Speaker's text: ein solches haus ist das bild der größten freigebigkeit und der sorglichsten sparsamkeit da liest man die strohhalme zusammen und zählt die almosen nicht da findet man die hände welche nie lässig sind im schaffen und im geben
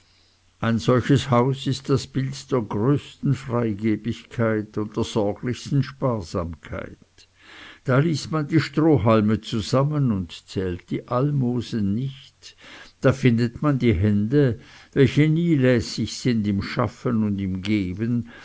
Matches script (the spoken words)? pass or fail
pass